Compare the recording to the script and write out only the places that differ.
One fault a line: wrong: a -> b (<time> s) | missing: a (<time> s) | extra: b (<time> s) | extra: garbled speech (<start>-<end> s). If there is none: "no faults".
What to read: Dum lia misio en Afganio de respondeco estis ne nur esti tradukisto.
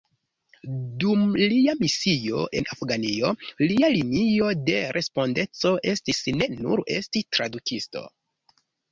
extra: lia linio (3.6 s)